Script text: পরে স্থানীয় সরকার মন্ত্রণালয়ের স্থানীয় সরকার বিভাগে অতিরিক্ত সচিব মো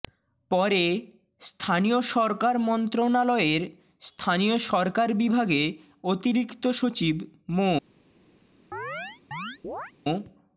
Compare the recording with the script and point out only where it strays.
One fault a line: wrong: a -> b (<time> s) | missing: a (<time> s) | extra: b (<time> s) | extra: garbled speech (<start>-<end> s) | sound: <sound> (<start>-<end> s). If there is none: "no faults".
sound: chirp (8.7-9.9 s)